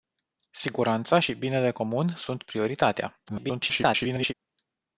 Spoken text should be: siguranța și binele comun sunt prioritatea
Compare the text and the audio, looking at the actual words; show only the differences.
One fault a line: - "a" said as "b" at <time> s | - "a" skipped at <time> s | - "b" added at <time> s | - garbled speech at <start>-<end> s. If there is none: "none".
- garbled speech at 3.3-4.3 s